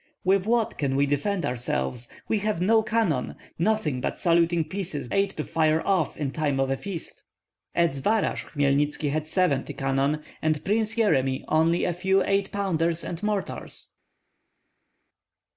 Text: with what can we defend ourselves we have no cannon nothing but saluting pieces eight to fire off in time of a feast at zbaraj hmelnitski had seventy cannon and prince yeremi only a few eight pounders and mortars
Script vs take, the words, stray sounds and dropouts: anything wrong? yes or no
no